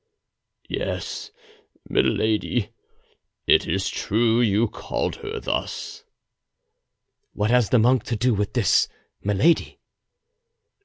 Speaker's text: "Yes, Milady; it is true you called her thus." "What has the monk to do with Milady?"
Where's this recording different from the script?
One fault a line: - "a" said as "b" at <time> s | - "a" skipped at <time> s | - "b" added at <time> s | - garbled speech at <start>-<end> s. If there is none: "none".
- "this" added at 8.5 s